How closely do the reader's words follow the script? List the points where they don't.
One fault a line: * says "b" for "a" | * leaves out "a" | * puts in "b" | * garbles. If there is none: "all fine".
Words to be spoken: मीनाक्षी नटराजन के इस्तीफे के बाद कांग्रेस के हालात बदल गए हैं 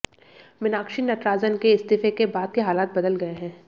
* leaves out "कांग्रेस"